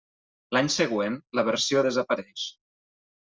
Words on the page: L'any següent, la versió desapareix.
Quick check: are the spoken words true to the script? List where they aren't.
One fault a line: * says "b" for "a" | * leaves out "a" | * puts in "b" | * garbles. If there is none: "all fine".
all fine